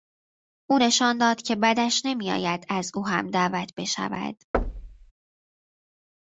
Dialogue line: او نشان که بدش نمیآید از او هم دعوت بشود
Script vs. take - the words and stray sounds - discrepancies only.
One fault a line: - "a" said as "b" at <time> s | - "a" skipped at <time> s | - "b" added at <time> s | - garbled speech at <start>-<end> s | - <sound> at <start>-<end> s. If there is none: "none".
- "داد" added at 1.2 s
- thud at 4.5-5.1 s